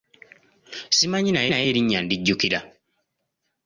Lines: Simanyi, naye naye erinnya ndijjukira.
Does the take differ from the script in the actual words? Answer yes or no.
no